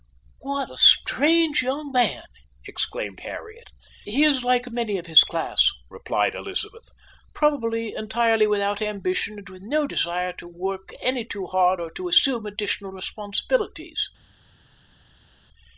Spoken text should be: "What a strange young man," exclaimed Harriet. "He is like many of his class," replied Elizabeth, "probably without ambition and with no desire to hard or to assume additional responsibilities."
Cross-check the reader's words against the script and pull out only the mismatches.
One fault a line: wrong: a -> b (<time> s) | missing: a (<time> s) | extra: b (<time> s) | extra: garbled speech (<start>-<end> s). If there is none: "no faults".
extra: entirely (8.0 s)
extra: work any too (10.5 s)